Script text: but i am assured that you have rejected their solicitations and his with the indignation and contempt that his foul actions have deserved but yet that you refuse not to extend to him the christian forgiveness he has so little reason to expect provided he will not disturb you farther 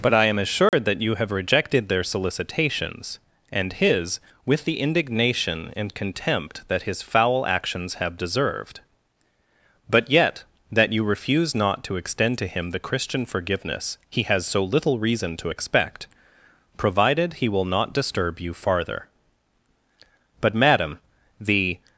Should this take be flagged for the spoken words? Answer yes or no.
yes